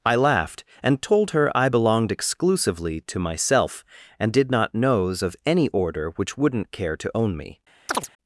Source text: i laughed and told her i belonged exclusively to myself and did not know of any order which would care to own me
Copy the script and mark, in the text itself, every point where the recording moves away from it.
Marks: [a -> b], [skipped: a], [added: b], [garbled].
i laughed and told her i belonged exclusively to myself and did not [know -> knows] of any order which [would -> wouldn't] care to own me